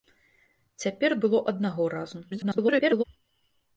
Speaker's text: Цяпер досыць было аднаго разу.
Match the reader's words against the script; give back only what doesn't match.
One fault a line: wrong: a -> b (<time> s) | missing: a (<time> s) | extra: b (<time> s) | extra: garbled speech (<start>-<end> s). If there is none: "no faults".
missing: досыць (1.1 s)
extra: garbled speech (2.3-3.0 s)